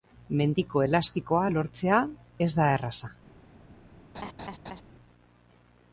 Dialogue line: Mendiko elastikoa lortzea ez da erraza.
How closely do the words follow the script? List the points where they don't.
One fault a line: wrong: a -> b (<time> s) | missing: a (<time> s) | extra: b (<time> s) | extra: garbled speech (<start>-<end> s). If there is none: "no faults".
no faults